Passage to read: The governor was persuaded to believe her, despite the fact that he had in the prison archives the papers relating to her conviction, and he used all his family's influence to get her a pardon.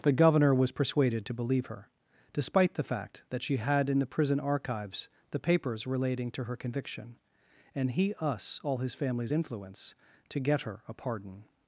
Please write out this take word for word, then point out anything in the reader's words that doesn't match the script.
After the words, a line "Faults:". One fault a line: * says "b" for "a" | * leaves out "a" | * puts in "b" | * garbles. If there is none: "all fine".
The governor was persuaded to believe her, despite the fact that she had in the prison archives the papers relating to her conviction, and he us all his family's influence to get her a pardon.
Faults:
* says "she" for "he"
* says "us" for "used"